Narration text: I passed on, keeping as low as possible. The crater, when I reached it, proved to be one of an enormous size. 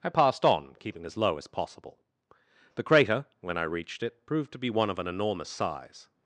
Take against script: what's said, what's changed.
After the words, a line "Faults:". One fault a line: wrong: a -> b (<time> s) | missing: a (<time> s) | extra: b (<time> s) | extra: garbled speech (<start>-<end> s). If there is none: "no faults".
I passed on, keeping as low as possible. The crater, when I reached it, proved to be one of an enormous size.
Faults:
no faults